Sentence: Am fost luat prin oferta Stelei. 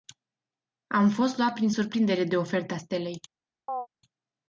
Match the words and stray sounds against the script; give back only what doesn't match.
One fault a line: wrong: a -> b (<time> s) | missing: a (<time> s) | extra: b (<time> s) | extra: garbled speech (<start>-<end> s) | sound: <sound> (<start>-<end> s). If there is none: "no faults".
extra: surprindere de (1.7 s)
sound: chirp (3.7-3.9 s)